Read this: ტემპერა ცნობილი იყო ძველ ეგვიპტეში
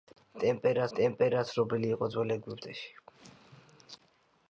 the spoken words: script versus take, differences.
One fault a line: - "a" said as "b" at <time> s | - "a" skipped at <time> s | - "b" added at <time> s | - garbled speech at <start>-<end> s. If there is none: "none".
- "ტემპერა" added at 1.0 s